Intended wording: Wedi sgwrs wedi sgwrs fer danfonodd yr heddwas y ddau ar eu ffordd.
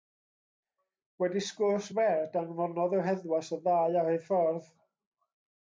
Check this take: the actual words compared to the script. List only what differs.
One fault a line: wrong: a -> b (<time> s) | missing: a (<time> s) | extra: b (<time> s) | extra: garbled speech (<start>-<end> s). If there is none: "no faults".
missing: wedi sgwrs (1.9 s)